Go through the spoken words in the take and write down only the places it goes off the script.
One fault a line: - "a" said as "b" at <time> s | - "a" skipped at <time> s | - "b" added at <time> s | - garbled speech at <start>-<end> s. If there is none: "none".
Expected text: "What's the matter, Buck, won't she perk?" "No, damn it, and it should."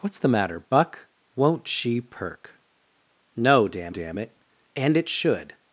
- "damn" added at 3.9 s